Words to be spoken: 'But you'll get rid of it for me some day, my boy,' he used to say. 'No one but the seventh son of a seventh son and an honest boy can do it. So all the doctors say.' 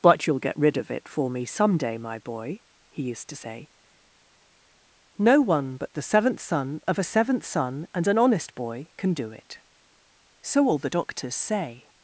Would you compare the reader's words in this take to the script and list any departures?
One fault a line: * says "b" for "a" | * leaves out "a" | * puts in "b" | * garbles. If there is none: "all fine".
all fine